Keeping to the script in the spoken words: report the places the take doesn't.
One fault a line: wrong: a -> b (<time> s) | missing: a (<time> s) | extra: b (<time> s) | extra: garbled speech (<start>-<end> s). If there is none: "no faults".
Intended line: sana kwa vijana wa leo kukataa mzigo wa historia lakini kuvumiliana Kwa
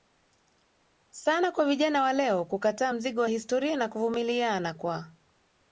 wrong: lakini -> na (3.8 s)